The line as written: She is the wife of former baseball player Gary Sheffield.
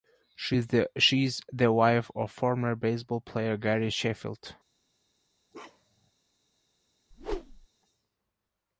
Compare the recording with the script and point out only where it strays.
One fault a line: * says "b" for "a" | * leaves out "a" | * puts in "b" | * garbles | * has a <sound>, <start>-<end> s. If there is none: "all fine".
* has a bark, 5.5-6.1 s
* has a whoosh, 7.1-7.7 s